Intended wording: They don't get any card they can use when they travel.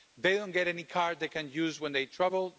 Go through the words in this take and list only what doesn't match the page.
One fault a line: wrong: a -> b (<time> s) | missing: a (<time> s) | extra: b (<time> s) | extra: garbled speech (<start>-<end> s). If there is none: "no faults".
no faults